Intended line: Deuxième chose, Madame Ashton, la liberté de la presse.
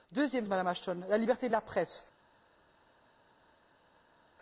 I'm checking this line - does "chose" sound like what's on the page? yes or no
no